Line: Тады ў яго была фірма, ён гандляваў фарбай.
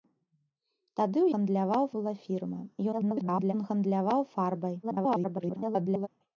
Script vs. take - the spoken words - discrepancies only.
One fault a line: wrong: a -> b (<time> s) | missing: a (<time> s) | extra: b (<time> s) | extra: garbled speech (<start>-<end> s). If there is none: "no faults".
wrong: яго -> гандляваў (1.3 s)
extra: garbled speech (2.9-3.5 s)
extra: garbled speech (4.8-6.1 s)